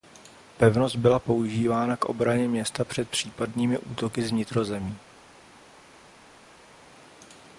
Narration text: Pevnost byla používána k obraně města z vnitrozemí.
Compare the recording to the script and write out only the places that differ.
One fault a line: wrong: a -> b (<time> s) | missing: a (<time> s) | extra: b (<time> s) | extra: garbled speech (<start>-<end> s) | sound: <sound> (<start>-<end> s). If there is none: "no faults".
extra: před případnými útoky (2.8 s)